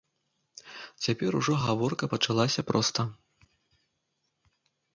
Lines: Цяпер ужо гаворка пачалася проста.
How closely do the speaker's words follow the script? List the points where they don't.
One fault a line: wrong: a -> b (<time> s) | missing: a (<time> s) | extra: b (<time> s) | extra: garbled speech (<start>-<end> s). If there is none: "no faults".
no faults